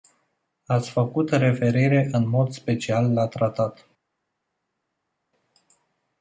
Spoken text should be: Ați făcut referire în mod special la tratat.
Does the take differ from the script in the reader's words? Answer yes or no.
no